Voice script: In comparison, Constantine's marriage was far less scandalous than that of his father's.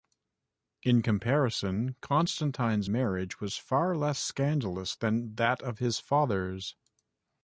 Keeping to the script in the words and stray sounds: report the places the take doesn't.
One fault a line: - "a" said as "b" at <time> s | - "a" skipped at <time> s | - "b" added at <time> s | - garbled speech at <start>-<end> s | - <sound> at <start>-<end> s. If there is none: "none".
none